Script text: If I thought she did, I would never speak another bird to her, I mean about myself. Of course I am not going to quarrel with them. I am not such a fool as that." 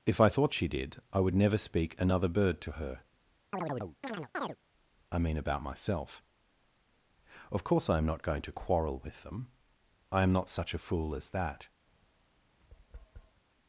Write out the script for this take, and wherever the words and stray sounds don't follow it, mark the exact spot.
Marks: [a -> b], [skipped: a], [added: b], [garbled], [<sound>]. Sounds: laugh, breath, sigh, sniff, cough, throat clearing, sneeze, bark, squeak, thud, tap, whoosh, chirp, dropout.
If I thought she did, I would never speak another bird to her, [chirp] I mean about myself. Of course I am not going to quarrel with them. I am not such a fool as that." [tap]